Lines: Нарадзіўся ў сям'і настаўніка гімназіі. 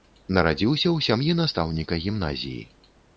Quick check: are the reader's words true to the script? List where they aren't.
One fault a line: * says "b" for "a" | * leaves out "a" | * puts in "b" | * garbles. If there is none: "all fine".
all fine